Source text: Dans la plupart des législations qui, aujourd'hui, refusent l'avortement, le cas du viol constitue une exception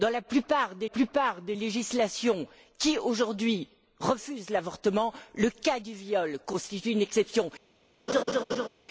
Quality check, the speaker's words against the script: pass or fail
fail